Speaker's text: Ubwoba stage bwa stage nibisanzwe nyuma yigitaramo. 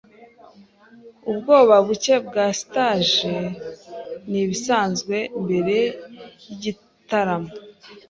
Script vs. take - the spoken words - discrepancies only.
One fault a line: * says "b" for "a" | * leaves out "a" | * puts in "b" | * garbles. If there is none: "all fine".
* says "buke" for "stage"
* says "mbere" for "nyuma"